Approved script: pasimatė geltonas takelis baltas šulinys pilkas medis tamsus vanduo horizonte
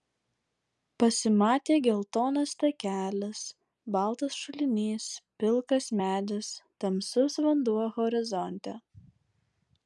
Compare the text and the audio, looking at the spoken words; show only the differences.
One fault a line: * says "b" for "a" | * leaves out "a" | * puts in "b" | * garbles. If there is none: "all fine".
all fine